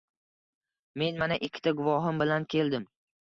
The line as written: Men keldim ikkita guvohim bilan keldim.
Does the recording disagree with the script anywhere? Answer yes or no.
yes